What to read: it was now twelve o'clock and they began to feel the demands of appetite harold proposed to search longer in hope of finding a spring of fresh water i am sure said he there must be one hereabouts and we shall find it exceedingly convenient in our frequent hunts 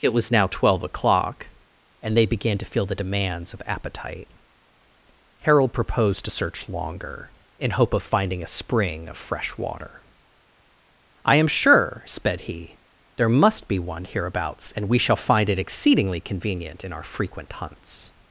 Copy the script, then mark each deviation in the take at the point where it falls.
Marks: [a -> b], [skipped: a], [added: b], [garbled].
it was now twelve o'clock and they began to feel the demands of appetite harold proposed to search longer in hope of finding a spring of fresh water i am sure [said -> sped] he there must be one hereabouts and we shall find it exceedingly convenient in our frequent hunts